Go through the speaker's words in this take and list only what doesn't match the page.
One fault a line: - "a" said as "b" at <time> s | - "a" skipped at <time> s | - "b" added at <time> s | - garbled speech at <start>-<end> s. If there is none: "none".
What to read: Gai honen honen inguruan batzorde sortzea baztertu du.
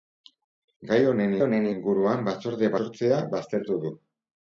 none